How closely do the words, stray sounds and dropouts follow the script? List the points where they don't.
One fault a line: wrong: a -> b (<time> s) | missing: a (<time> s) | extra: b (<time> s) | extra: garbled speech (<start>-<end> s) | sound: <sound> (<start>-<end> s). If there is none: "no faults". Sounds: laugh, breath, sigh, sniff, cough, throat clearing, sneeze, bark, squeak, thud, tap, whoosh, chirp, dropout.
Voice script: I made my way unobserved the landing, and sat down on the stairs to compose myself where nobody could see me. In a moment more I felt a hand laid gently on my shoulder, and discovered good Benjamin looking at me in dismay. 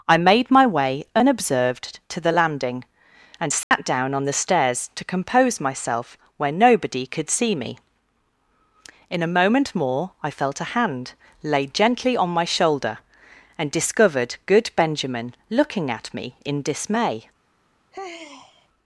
extra: to (2.1 s)
sound: dropout (3.6-3.7 s)
sound: sigh (17.9-18.7 s)